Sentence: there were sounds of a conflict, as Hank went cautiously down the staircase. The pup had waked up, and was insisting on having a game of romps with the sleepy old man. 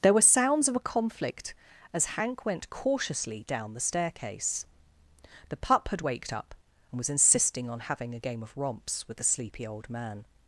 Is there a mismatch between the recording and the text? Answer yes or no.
no